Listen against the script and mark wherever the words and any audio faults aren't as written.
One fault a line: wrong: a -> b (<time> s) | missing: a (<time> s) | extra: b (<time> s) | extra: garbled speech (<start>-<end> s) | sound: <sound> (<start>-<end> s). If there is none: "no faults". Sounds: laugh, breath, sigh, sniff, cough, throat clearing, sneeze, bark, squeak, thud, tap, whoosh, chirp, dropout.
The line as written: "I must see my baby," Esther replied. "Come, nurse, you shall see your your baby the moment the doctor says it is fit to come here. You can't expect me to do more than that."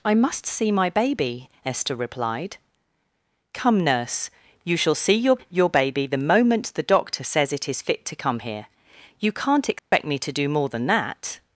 sound: dropout (9.8-9.9 s)